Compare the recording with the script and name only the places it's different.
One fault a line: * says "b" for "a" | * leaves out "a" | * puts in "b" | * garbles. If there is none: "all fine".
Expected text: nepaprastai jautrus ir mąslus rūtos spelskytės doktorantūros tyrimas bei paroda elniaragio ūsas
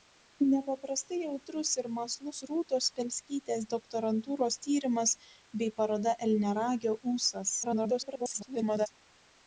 * garbles